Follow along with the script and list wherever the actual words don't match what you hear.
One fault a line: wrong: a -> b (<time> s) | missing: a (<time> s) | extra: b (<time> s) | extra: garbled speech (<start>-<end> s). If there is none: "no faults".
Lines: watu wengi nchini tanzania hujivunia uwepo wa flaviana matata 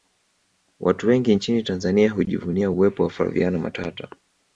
no faults